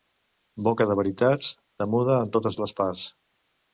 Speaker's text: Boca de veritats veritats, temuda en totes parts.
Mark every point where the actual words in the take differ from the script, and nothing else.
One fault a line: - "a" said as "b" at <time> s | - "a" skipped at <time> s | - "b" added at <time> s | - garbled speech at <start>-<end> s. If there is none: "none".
- "veritats" skipped at 1.5 s
- "les" added at 2.6 s